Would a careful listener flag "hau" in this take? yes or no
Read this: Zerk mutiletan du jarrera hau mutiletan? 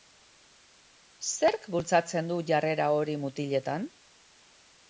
yes